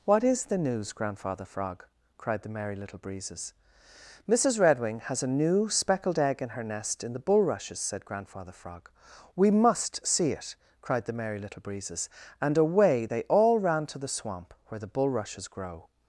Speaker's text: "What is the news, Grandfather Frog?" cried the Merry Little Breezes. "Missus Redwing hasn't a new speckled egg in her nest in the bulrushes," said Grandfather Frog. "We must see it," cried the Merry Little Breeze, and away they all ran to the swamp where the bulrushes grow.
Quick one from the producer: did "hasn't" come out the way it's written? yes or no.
no